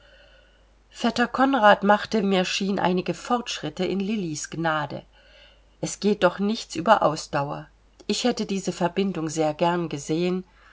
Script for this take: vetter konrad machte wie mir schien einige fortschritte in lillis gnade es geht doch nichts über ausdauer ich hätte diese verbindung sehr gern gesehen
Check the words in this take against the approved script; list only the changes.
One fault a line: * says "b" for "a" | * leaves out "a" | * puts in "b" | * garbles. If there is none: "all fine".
* leaves out "wie"